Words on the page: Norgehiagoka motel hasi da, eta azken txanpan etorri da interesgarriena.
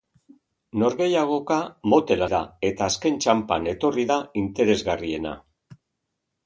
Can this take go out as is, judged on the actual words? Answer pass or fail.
fail